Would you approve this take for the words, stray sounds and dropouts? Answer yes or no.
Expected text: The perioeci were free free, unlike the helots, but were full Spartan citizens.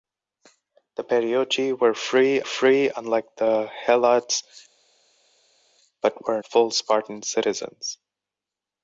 yes